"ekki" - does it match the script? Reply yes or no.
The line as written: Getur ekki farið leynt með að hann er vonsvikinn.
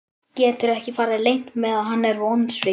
yes